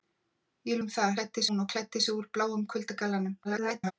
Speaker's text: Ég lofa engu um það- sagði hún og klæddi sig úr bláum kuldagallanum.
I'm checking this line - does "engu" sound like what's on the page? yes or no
no